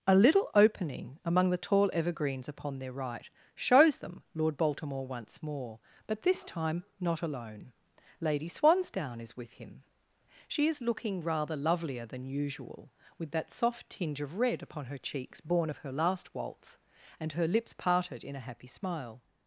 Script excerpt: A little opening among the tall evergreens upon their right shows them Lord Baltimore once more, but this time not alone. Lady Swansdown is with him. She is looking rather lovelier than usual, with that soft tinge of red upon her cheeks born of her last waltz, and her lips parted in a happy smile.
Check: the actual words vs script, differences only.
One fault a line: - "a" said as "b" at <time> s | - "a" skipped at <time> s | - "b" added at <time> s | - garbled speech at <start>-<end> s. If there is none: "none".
none